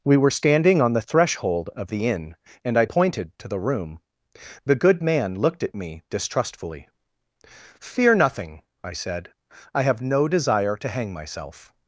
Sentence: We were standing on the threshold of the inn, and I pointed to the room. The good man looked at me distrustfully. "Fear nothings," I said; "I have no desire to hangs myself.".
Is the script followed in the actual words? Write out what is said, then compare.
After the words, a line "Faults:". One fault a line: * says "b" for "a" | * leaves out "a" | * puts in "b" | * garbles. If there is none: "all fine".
We were standing on the threshold of the inn, and I pointed to the room. The good man looked at me distrustfully. "Fear nothing," I said; "I have no desire to hang myself.".
Faults:
* says "nothing" for "nothings"
* says "hang" for "hangs"